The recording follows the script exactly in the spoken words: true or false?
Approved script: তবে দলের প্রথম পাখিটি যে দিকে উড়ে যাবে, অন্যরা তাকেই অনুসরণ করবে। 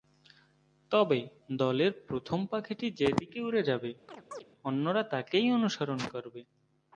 true